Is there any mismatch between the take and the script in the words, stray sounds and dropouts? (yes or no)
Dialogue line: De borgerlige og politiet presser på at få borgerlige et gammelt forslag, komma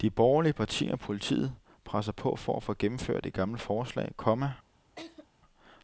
yes